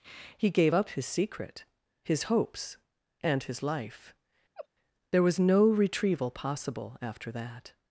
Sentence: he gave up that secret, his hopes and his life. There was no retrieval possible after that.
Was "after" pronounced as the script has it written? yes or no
yes